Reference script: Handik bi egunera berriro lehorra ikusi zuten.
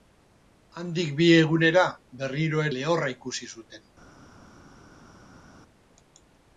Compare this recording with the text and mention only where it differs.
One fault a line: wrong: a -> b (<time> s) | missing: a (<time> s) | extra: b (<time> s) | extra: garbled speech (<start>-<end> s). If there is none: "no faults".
no faults